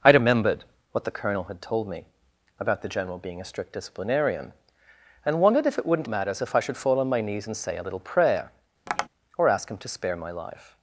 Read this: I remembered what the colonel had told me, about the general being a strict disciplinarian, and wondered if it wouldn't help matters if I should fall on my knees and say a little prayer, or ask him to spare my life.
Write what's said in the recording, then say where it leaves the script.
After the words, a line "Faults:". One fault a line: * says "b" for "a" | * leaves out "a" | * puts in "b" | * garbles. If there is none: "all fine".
I remembered what the colonel had told me, about the general being a strict disciplinarian, and wondered if it wouldn't matters if I should fall on my knees and say a little prayer, or ask him to spare my life.
Faults:
* leaves out "help"